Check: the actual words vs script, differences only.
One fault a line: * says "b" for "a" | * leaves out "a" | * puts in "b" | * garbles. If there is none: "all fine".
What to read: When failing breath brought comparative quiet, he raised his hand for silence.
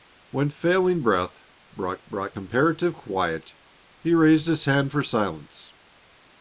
* puts in "brought"